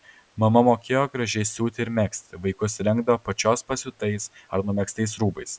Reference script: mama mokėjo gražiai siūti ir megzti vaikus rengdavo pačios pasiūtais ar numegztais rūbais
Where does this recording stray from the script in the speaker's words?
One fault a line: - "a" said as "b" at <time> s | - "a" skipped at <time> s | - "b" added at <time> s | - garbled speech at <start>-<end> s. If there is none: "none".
none